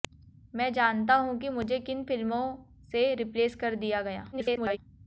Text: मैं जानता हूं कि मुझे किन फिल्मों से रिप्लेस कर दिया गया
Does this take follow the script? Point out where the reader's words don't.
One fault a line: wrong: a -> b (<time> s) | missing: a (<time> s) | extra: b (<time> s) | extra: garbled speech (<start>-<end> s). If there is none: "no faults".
extra: garbled speech (4.3-4.8 s)